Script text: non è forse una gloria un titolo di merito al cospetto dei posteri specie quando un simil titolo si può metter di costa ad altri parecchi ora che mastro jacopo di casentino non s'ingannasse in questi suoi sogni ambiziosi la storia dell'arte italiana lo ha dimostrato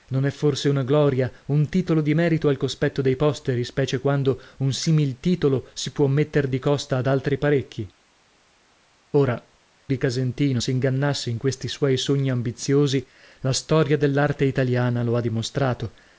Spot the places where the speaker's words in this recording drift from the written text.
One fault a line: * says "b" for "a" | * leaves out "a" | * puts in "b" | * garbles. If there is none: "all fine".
* leaves out "che mastro jacopo"
* leaves out "non"